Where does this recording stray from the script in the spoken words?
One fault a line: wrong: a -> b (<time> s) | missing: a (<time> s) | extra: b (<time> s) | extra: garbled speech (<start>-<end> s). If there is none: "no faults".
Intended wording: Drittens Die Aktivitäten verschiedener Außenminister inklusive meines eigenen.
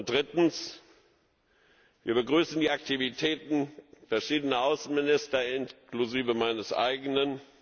extra: Wir begrüßen (2.0 s)